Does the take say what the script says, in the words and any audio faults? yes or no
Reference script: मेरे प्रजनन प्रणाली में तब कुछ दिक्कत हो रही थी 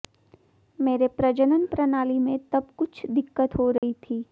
no